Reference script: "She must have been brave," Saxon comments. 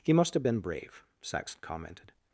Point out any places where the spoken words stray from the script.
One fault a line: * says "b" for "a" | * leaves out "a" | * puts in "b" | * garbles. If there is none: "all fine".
* says "He" for "She"
* says "commented" for "comments"